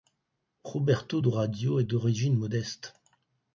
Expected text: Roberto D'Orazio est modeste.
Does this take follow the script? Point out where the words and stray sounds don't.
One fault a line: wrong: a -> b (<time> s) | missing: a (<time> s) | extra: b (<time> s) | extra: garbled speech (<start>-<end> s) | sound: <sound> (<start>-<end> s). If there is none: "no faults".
extra: d'origine (1.8 s)